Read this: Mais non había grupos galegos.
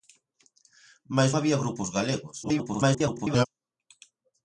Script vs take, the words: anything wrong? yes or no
yes